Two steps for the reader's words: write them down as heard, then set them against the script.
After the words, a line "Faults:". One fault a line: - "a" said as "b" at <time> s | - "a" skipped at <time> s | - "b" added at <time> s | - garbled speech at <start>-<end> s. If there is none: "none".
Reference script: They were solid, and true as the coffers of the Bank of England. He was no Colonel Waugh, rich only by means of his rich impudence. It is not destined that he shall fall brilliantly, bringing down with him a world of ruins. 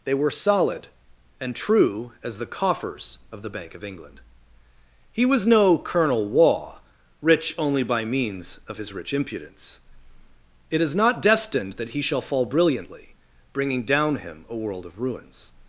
They were solid, and true as the coffers of the Bank of England. He was no Colonel Waugh, rich only by means of his rich impudence. It is not destined that he shall fall brilliantly, bringing down him a world of ruins.
Faults:
- "with" skipped at 14.2 s